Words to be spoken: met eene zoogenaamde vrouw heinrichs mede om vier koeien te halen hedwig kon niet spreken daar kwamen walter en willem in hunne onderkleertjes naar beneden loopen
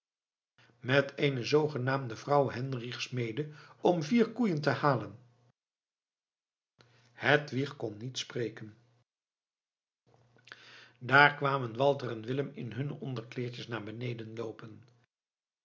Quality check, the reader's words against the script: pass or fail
pass